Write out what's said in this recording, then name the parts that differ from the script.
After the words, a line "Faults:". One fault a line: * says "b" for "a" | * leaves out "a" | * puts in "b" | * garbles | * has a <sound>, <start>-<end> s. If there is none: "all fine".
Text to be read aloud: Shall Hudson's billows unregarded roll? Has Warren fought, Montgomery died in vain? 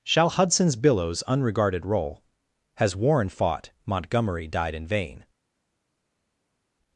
Shall Hudson's billows unregarded roll? Has Warren fought, Montgomery died in vain?
Faults:
all fine